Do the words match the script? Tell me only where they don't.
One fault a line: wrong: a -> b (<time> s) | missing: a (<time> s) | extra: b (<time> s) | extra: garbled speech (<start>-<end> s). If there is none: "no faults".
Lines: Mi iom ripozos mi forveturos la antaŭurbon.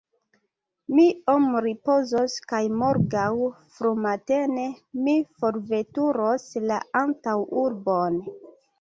extra: kaj morgaŭ frumatene (2.5 s)